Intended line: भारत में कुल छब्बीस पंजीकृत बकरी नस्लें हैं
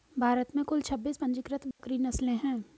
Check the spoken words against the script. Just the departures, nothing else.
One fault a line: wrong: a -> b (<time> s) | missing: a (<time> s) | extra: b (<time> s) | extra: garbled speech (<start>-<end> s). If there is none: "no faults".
no faults